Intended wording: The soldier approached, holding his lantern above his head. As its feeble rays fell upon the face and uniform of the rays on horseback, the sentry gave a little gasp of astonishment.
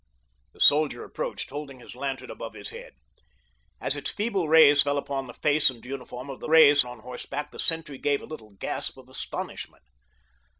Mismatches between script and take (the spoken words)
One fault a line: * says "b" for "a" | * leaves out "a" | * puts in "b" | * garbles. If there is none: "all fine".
all fine